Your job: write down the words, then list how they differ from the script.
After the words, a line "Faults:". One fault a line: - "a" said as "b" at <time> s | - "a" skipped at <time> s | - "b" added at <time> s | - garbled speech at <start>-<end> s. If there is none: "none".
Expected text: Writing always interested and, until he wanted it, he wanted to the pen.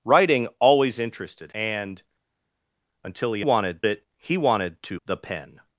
Writing always interested and, until he wanted it, he wanted to the pen.
Faults:
none